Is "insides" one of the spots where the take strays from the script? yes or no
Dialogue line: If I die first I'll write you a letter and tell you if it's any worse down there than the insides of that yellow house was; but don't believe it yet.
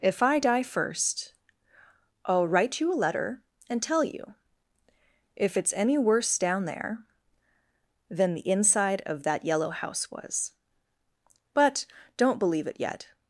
yes